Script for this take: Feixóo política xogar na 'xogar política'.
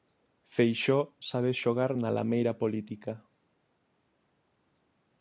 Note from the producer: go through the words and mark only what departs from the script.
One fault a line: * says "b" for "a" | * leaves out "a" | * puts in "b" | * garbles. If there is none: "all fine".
* says "sabe" for "política"
* says "lameira" for "xogar"